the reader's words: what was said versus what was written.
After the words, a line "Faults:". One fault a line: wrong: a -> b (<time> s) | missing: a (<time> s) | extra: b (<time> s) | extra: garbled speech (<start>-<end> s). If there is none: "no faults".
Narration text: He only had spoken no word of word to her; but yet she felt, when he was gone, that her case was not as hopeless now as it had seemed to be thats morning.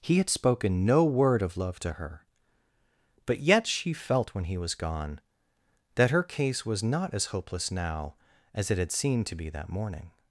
He had spoken no word of love to her; but yet she felt, when he was gone, that her case was not as hopeless now as it had seemed to be that morning.
Faults:
missing: only (0.2 s)
wrong: word -> love (1.6 s)
wrong: thats -> that (9.5 s)